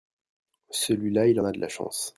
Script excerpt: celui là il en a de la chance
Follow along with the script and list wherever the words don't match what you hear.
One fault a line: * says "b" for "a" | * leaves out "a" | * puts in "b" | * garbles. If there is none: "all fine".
* leaves out "en"